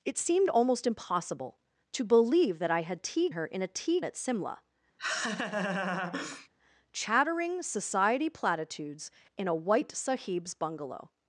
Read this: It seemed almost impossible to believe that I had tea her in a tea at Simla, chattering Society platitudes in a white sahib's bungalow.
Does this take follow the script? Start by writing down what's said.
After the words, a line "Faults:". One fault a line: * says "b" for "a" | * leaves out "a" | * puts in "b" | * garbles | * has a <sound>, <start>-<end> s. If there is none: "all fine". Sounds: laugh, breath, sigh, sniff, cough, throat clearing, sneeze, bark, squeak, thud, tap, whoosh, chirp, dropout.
It seemed almost impossible to believe that I had tea her in a tea at Simla, chattering Society platitudes in a white sahib's bungalow.
Faults:
* has a laugh, 5.0-6.5 s